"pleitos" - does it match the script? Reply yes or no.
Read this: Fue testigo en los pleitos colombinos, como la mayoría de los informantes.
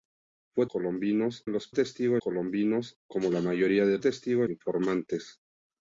no